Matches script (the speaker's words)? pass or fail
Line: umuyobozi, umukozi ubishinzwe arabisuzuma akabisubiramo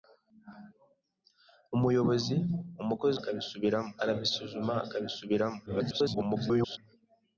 fail